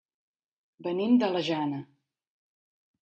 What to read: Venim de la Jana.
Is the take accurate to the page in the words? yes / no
yes